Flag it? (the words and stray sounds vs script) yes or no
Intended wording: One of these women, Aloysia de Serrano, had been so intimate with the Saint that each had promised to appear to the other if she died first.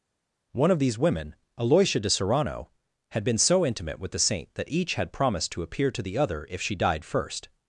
no